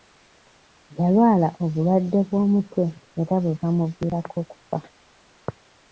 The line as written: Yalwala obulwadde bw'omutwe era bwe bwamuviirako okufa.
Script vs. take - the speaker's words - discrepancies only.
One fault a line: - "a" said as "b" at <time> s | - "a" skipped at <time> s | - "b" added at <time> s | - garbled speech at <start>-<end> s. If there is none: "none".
none